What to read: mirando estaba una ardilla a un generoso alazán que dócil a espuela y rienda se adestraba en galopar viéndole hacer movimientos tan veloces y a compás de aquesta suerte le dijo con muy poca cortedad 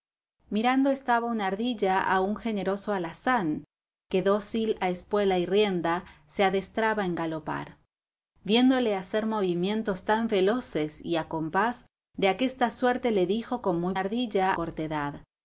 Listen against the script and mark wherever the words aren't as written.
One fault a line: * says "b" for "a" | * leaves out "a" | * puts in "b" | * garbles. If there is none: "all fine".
* says "ardilla" for "poca"